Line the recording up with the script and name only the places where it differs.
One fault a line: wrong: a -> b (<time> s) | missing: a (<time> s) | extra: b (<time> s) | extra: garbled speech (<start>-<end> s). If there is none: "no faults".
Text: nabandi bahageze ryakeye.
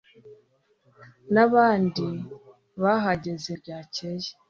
no faults